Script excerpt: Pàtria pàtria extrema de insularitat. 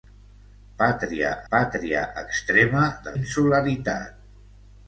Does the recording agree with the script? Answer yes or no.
yes